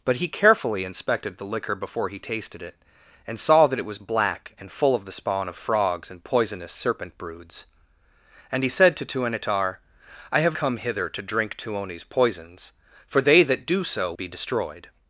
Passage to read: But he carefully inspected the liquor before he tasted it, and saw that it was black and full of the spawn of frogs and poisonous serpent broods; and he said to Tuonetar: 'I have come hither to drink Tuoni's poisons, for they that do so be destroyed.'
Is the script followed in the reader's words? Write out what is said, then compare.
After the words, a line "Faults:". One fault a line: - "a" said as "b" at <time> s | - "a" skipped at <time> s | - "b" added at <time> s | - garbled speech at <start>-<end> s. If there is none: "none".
But he carefully inspected the liquor before he tasted it, and saw that it was black and full of the spawn of frogs and poisonous serpent broods; and he said to Tuonetar: 'I have come hither to drink Tuoni's poisons, for they that do so be destroyed.'
Faults:
none